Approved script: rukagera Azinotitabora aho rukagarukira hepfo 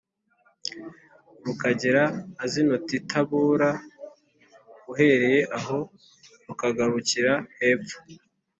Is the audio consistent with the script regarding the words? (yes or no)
no